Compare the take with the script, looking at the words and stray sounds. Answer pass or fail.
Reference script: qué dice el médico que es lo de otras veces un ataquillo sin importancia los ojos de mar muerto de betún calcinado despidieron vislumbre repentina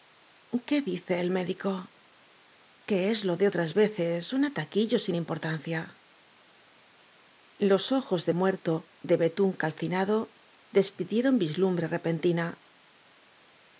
fail